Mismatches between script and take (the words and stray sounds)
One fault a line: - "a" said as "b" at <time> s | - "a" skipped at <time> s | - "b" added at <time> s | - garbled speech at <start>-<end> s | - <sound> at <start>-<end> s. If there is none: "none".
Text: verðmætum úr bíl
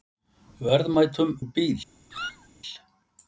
- squeak at 2.1-2.5 s